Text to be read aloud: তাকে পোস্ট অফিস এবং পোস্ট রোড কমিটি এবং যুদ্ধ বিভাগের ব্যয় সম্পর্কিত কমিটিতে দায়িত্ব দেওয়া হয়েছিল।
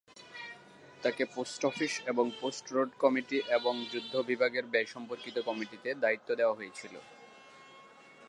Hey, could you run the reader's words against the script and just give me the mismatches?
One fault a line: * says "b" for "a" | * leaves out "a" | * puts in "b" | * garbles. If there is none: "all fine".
all fine